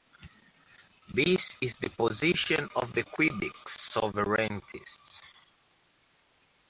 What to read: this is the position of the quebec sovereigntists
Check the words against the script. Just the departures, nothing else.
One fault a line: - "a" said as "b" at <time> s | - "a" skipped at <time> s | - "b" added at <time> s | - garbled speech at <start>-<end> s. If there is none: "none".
none